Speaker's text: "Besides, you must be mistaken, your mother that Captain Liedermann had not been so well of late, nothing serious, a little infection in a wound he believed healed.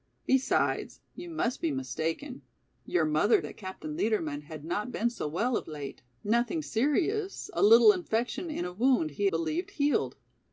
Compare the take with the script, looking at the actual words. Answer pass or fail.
pass